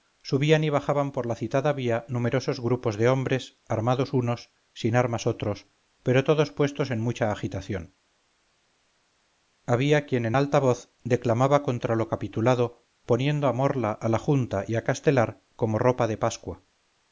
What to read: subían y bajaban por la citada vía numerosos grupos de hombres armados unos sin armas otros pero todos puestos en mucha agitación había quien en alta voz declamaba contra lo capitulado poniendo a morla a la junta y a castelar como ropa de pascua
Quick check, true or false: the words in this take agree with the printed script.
true